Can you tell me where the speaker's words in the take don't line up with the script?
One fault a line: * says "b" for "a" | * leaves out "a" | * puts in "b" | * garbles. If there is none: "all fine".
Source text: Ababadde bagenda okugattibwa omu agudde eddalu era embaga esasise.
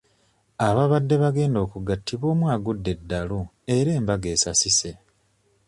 all fine